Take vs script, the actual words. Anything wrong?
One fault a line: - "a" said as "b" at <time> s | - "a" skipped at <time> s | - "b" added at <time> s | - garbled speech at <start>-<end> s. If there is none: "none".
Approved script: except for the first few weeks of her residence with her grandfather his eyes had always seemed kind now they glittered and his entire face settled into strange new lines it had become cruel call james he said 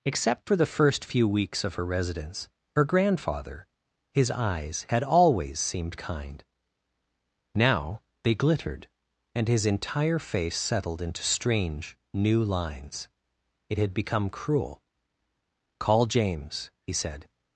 - "with" skipped at 2.5 s